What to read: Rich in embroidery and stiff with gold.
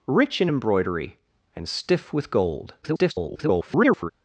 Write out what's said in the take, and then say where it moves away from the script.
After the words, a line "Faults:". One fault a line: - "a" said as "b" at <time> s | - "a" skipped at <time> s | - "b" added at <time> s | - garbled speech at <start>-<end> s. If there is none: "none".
Rich in embroidery and stiff with gold. [garbled]
Faults:
- garbled speech at 2.8-4.1 s